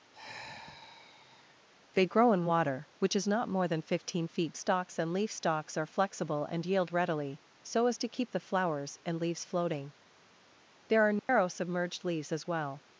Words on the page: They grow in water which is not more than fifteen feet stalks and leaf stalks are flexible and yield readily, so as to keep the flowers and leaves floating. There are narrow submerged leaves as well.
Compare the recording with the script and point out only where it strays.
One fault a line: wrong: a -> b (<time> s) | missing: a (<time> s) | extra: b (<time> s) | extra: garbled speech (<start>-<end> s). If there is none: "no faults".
no faults